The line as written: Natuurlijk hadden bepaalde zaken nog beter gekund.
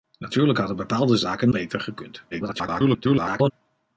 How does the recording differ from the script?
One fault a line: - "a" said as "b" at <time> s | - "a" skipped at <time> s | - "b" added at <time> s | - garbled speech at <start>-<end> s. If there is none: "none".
- "nog" skipped at 1.5 s
- garbled speech at 2.3-3.5 s